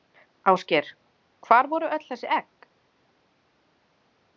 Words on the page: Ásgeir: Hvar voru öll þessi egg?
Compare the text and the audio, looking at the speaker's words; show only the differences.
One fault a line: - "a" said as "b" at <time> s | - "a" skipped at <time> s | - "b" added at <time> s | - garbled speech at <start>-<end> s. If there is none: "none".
none